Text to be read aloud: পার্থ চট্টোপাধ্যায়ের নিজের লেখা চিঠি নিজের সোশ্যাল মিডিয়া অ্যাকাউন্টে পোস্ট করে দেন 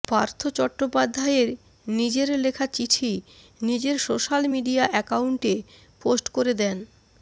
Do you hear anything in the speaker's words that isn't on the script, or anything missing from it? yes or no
no